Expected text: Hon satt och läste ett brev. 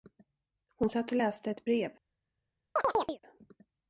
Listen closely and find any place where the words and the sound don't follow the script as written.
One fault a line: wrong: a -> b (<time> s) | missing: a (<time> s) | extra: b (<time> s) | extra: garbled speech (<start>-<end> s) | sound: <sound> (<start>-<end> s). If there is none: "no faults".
sound: chirp (2.8-3.2 s)